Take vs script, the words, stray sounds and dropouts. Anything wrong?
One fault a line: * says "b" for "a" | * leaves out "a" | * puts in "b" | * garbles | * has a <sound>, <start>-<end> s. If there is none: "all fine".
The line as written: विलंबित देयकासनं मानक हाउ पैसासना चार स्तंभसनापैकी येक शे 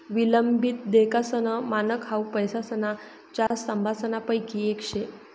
* has a dropout, 3.5-3.5 s